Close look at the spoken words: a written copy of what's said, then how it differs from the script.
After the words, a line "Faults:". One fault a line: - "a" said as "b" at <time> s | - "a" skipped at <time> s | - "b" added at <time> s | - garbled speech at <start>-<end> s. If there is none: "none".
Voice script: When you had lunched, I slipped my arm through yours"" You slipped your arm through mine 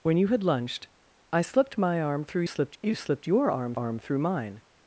When you had lunched, I slipped my arm through slipped"" You slipped your arm arm through mine
Faults:
- "yours" said as "slipped" at 2.4 s
- "arm" added at 3.7 s